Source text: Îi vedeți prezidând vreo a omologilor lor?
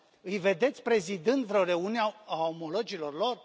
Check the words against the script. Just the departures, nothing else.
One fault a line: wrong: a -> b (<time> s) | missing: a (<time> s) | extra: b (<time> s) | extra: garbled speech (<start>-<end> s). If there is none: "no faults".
extra: reuniune (1.6 s)